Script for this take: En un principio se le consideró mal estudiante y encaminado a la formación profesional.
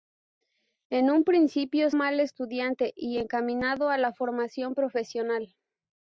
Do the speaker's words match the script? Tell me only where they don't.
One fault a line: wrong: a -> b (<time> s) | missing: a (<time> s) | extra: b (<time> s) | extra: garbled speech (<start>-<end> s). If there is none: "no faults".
missing: se le consideró (1.9 s)